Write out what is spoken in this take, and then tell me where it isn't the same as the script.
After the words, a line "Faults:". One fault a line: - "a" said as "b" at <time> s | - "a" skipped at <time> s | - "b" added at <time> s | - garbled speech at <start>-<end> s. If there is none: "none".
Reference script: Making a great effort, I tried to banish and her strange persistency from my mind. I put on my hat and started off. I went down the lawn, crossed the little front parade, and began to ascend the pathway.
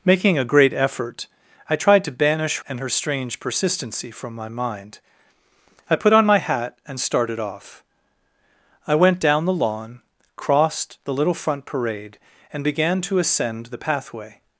Making a great effort, I tried to banish and her strange persistency from my mind. I put on my hat and started off. I went down the lawn, crossed the little front parade, and began to ascend the pathway.
Faults:
none